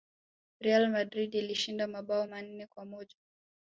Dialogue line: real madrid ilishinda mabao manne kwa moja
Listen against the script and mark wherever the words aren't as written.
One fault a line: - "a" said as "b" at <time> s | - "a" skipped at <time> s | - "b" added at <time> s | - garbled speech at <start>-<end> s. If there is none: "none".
none